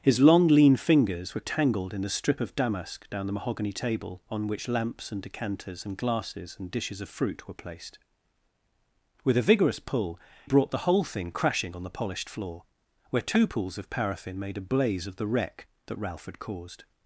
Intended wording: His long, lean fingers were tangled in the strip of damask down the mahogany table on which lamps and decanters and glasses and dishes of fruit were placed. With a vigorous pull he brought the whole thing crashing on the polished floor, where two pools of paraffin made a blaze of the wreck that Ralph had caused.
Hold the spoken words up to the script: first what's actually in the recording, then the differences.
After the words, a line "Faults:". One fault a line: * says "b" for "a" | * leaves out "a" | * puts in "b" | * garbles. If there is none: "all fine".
His long, lean fingers were tangled in the strip of damask down the mahogany table on which lamps and decanters and glasses and dishes of fruit were placed. With a vigorous pull brought the whole thing crashing on the polished floor, where two pools of paraffin made a blaze of the wreck that Ralph had caused.
Faults:
* leaves out "he"